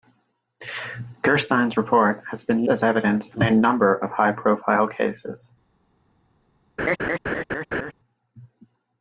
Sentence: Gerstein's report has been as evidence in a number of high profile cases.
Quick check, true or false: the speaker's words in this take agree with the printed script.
true